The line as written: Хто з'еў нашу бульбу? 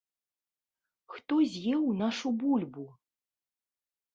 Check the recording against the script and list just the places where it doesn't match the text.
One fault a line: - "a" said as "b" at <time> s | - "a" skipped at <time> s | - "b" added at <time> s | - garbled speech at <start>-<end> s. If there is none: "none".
none